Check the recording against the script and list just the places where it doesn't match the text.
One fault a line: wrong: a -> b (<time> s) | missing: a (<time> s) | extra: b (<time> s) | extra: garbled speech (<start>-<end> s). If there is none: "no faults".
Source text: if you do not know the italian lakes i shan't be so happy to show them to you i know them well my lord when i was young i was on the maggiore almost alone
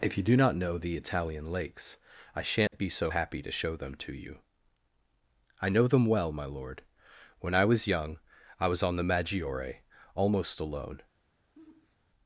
no faults